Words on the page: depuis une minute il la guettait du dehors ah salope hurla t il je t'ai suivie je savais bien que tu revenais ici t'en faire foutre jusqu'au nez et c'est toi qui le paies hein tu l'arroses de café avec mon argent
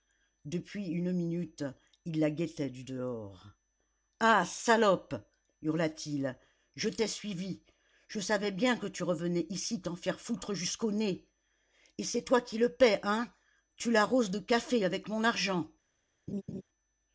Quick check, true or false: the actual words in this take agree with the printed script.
true